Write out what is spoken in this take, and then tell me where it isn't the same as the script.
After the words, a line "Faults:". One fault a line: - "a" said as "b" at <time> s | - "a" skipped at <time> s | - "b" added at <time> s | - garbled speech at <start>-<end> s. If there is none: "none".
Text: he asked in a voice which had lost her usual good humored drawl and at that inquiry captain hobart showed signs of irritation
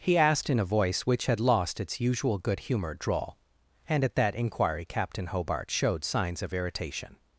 he asked in a voice which had lost its usual good humored drawl and at that inquiry captain hobart showed signs of irritation
Faults:
- "her" said as "its" at 1.8 s